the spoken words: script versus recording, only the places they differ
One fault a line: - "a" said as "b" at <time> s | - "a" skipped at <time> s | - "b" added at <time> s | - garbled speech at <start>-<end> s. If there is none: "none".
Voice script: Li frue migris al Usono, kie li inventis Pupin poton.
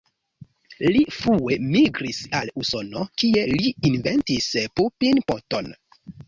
none